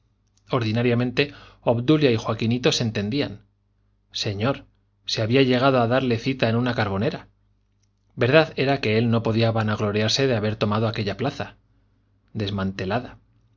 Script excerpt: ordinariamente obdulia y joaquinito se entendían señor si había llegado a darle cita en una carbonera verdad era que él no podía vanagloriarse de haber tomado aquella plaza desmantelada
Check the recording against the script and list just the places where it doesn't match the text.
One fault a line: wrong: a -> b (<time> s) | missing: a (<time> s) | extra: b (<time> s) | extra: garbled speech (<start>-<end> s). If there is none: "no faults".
no faults